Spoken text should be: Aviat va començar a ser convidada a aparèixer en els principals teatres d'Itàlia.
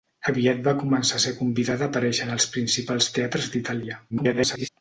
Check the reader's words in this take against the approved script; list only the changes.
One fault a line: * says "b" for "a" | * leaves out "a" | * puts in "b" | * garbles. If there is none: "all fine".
* garbles